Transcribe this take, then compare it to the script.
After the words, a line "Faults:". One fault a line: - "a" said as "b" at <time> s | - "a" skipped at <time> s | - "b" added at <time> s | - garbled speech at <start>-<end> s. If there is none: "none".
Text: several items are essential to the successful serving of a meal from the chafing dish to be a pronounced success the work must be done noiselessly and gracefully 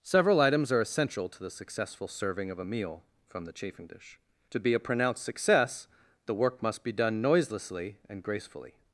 several items are essential to the successful serving of a meal from the chafing dish to be a pronounced success the work must be done noiselessly and gracefully
Faults:
none